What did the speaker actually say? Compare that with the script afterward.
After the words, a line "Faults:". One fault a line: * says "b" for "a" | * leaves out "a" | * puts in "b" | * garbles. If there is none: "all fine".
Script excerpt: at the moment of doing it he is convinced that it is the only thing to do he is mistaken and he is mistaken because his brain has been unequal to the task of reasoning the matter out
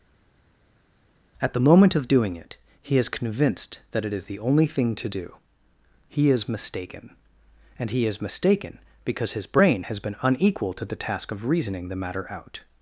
at the moment of doing it he is convinced that it is the only thing to do he is mistaken and he is mistaken because his brain has been unequal to the task of reasoning the matter out
Faults:
all fine